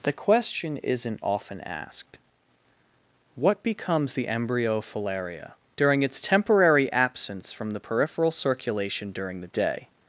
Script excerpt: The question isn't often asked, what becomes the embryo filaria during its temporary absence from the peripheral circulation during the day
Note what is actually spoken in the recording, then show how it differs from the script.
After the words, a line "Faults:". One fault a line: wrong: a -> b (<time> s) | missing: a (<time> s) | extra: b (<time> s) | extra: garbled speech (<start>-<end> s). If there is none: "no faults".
The question isn't often asked, what becomes the embryo filaria during its temporary absence from the peripheral circulation during the day
Faults:
no faults